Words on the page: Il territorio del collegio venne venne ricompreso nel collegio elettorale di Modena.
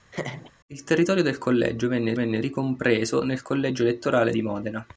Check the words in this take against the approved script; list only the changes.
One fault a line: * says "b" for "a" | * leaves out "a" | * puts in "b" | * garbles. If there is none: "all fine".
all fine